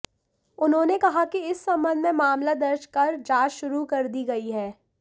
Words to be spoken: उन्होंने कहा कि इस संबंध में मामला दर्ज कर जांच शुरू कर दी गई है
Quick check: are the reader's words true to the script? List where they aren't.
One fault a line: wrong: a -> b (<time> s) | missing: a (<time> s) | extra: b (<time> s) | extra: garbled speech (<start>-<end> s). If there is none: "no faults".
no faults